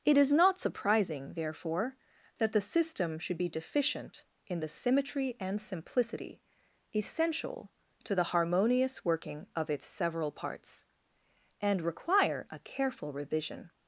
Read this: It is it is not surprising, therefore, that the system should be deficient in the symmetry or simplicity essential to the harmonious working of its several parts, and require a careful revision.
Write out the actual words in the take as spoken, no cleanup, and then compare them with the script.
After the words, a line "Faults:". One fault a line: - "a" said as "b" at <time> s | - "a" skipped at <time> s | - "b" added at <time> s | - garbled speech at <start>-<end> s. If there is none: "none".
It is not surprising, therefore, that the system should be deficient in the symmetry and simplicity essential to the harmonious working of its several parts, and require a careful revision.
Faults:
- "it is" skipped at 0.3 s
- "or" said as "and" at 5.4 s